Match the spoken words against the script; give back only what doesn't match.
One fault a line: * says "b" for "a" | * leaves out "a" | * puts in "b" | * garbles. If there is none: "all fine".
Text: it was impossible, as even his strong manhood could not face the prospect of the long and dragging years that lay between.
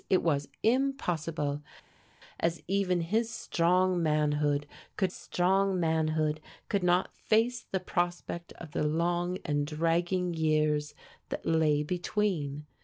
* puts in "strong manhood could"